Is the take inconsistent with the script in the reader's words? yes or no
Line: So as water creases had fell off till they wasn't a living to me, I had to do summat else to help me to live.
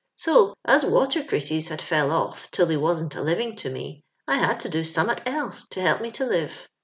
no